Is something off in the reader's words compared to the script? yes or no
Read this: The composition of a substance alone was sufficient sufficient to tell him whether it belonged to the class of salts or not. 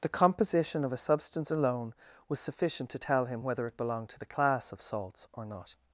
yes